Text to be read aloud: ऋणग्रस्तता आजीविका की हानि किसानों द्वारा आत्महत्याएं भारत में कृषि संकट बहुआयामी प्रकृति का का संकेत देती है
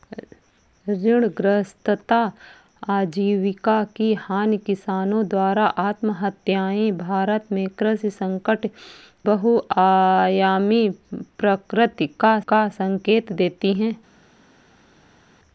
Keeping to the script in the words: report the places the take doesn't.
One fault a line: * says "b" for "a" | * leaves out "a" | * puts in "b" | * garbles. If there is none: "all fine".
all fine